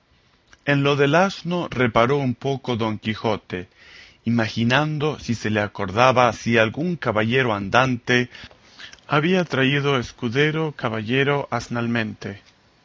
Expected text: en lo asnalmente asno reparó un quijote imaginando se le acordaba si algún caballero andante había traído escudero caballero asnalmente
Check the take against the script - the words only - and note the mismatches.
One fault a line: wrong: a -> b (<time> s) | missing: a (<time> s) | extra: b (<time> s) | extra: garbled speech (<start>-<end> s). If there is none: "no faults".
wrong: asnalmente -> del (0.9 s)
extra: poco don (2.3 s)
extra: si (5.2 s)